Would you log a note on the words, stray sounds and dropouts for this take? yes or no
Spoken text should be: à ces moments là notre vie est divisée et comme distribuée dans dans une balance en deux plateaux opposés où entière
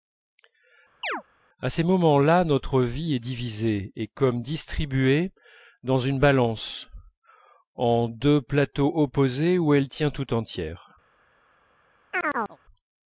yes